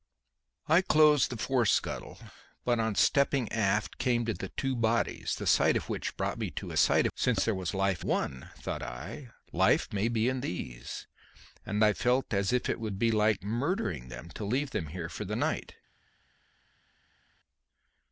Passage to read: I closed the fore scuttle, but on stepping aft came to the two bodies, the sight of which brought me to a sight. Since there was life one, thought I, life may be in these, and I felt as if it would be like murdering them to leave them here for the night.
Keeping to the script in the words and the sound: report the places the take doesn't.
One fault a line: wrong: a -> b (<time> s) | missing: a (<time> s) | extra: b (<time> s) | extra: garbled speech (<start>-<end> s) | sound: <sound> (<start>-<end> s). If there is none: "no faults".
no faults